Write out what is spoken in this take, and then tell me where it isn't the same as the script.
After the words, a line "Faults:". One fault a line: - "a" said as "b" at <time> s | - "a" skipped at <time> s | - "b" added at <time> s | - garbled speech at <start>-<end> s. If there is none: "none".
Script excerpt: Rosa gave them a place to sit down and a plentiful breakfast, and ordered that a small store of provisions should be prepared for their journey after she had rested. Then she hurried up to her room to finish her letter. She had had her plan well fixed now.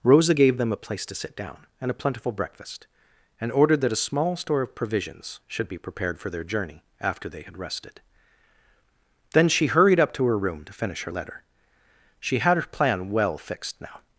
Rosa gave them a place to sit down and a plentiful breakfast, and ordered that a small store of provisions should be prepared for their journey after they had rested. Then she hurried up to her room to finish her letter. She had her plan well fixed now.
Faults:
- "she" said as "they" at 7.3 s
- "had" skipped at 12.6 s